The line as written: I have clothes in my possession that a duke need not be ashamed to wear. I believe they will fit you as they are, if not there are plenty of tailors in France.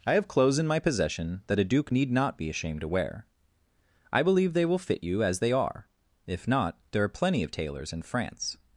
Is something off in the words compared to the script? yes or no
no